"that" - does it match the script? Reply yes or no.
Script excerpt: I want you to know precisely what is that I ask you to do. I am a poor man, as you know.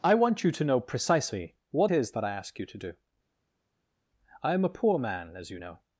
yes